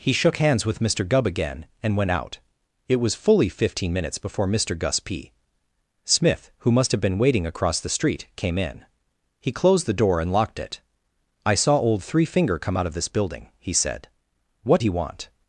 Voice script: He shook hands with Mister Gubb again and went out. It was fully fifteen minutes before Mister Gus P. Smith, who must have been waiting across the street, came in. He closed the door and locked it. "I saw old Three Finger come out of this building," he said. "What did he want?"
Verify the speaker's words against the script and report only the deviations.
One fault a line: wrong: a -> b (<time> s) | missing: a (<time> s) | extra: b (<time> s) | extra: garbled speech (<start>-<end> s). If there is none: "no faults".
missing: did (14.8 s)